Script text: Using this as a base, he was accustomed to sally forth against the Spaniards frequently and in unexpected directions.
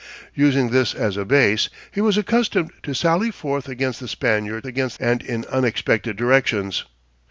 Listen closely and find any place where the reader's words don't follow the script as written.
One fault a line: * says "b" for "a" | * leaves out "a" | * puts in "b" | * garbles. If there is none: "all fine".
* says "against" for "frequently"